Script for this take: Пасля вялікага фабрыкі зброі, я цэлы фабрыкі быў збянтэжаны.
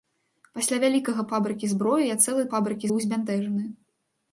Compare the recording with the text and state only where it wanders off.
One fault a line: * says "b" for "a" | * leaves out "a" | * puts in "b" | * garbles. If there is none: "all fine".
all fine